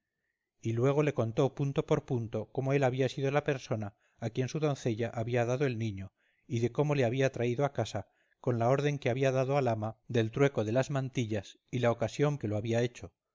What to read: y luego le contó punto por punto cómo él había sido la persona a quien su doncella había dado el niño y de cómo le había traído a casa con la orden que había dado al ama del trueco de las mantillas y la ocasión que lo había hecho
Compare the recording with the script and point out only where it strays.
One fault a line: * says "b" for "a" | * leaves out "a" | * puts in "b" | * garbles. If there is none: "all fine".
all fine